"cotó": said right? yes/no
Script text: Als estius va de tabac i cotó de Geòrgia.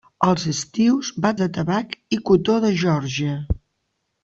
yes